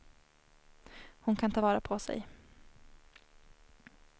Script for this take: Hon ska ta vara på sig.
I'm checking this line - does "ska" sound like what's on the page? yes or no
no